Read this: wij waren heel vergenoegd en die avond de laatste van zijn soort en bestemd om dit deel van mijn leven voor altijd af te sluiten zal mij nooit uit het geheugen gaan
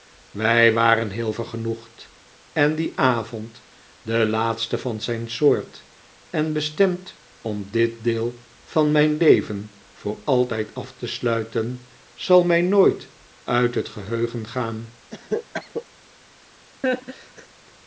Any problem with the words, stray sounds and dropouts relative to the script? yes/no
yes